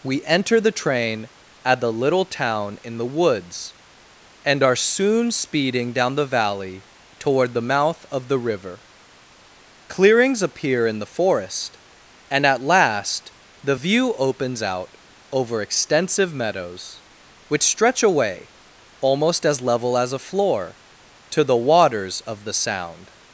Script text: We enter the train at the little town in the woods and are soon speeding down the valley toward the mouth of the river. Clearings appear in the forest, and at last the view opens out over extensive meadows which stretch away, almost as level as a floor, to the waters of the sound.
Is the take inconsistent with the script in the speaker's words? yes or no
no